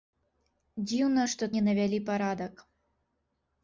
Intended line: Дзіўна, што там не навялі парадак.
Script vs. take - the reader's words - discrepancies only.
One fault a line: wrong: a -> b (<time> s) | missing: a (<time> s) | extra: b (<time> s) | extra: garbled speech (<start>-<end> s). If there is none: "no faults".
missing: там (1.4 s)